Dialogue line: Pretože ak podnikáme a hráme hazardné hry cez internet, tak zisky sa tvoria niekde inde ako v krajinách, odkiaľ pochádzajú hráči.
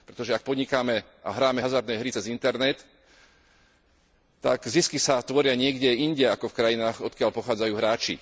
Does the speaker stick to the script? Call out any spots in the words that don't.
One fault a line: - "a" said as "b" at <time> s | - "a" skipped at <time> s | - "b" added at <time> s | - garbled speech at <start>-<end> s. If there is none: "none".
none